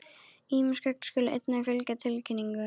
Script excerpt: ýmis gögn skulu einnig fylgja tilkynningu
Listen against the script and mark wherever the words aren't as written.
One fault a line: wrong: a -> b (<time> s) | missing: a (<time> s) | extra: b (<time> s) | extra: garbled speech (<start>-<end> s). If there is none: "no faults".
no faults